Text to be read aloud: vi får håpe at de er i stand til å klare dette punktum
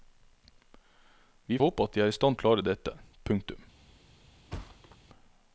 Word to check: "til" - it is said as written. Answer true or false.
false